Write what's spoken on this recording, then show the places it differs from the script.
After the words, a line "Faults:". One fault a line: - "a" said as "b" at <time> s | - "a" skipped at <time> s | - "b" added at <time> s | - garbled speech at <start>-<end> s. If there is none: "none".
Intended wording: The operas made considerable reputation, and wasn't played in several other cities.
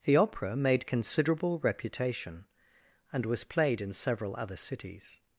The opera made considerable reputation, and was played in several other cities.
Faults:
- "operas" said as "opera" at 0.2 s
- "wasn't" said as "was" at 3.2 s